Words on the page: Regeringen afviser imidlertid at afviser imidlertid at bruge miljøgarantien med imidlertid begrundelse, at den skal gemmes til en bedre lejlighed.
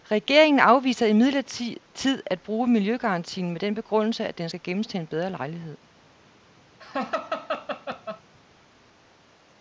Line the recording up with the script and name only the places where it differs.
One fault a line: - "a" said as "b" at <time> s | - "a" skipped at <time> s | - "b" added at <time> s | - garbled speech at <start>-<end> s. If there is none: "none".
- "afviser imidlertid at" skipped at 2.4 s
- "imidlertid" said as "den" at 3.6 s